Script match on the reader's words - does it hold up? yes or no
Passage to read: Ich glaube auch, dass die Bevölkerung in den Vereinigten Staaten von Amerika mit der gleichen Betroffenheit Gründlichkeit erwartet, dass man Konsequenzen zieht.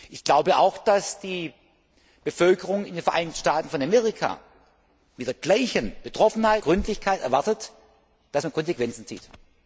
yes